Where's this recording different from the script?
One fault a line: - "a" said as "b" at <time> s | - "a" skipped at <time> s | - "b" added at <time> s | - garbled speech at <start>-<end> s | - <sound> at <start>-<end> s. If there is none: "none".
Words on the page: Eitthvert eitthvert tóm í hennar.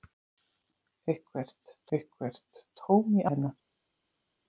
none